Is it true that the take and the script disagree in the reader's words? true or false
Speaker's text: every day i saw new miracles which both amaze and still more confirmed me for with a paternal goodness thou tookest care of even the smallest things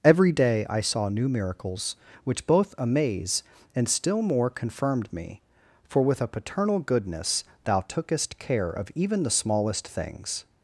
false